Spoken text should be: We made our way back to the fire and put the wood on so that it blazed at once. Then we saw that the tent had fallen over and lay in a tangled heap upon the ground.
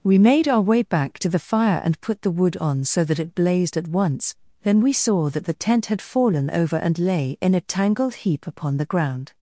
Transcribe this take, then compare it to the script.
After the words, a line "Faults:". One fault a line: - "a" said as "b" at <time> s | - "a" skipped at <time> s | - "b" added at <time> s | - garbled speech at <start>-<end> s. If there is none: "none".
We made our way back to the fire and put the wood on so that it blazed at once. Then we saw that the tent had fallen over and lay in a tangled heap upon the ground.
Faults:
none